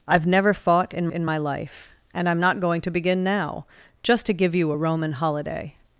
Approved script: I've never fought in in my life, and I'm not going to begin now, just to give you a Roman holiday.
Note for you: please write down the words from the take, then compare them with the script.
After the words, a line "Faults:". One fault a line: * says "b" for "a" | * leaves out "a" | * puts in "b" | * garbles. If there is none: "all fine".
I've never fought in in my life, and I'm not going to begin now, just to give you a Roman holiday.
Faults:
all fine